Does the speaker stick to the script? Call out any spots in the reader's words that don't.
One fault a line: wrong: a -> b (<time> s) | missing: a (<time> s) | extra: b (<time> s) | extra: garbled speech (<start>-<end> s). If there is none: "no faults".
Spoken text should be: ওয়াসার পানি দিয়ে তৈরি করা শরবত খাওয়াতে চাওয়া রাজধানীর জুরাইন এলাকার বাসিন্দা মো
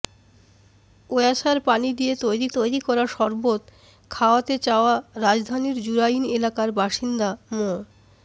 extra: তৈরি (2.5 s)